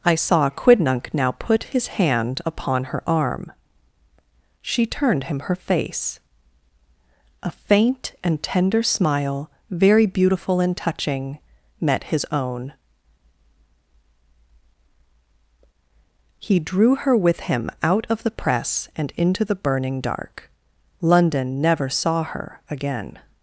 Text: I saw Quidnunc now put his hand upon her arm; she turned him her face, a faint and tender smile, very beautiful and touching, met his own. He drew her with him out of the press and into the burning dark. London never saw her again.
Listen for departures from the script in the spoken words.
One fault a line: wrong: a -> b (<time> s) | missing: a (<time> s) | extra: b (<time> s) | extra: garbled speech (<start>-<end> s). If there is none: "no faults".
no faults